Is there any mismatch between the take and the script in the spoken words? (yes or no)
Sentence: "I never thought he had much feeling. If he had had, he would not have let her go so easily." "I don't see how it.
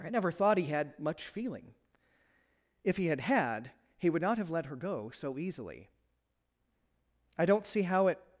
no